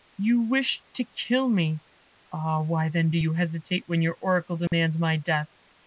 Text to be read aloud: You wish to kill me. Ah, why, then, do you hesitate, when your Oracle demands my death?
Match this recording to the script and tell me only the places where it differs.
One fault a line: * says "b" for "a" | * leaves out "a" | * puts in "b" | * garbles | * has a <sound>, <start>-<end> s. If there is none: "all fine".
* has a dropout, 4.7-4.7 s